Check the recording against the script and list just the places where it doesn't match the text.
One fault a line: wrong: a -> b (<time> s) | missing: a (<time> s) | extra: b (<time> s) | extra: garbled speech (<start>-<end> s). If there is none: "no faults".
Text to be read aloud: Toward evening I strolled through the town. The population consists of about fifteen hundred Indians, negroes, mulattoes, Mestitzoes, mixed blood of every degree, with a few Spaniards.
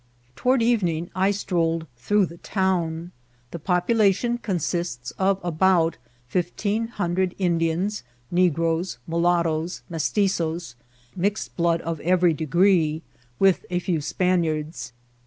no faults